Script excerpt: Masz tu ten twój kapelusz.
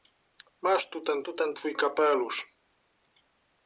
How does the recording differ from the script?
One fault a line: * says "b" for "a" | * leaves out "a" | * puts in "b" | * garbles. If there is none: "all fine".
* puts in "tu ten"